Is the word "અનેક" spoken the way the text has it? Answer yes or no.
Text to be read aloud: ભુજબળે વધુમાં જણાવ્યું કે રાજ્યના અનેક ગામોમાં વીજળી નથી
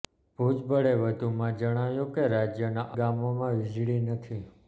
no